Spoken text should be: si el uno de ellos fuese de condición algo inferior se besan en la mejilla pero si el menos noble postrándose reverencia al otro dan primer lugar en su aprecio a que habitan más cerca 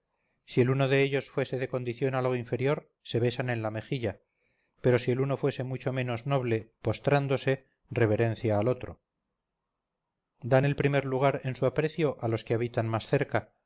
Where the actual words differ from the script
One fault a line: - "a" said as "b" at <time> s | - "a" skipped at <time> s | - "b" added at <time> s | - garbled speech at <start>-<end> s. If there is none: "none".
- "uno fuese mucho" added at 5.2 s
- "el" added at 10.6 s
- "los" added at 12.3 s